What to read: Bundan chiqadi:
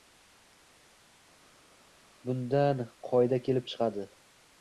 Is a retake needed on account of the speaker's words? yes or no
yes